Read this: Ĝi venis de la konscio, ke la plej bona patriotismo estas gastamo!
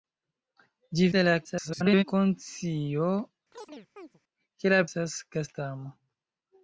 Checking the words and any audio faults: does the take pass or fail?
fail